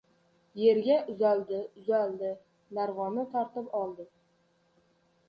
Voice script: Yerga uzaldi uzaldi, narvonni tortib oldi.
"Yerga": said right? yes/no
yes